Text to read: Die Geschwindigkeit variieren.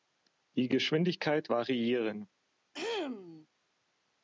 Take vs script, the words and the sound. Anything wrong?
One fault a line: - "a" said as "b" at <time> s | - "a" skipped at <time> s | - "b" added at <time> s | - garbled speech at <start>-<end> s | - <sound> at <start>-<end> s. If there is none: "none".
- throat clearing at 2.7-3.5 s